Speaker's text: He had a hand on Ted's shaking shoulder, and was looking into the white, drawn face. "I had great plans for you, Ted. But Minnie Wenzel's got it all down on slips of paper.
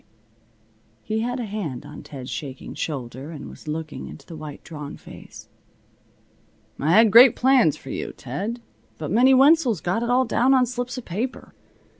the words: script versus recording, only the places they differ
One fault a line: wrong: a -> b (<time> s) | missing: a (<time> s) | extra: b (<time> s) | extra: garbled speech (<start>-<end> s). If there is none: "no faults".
no faults